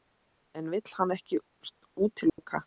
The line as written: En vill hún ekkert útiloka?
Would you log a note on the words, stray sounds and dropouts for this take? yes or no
yes